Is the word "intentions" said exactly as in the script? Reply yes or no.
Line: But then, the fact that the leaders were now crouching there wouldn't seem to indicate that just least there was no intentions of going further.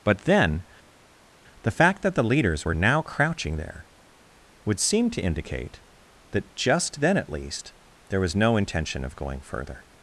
no